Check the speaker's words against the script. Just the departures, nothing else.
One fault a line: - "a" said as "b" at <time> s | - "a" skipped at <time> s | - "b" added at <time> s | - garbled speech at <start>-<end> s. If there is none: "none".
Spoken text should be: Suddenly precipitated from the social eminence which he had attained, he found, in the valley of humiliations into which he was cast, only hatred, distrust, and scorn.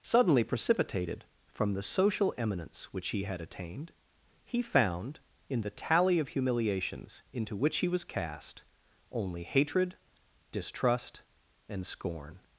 - "valley" said as "tally" at 5.7 s